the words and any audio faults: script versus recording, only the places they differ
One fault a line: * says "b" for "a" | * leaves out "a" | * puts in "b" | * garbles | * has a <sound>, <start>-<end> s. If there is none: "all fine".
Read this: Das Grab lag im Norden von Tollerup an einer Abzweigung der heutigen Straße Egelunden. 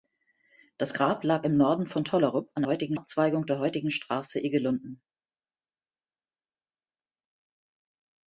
* says "heutigen" for "einer"